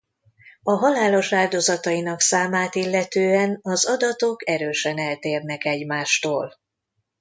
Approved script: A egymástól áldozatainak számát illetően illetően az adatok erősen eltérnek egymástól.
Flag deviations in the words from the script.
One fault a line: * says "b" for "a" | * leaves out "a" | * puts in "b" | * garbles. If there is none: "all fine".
* says "halálos" for "egymástól"
* leaves out "illetően"